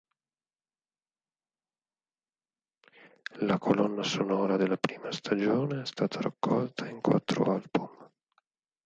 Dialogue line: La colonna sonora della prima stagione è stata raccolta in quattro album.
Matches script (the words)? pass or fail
pass